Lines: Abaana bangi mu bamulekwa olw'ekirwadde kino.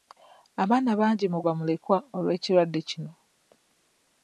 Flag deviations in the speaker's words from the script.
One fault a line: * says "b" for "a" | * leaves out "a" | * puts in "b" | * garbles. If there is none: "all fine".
all fine